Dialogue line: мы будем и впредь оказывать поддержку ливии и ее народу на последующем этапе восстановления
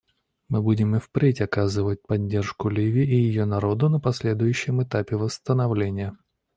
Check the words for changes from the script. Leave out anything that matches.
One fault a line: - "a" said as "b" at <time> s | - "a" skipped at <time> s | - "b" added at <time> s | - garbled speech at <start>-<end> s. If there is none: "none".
none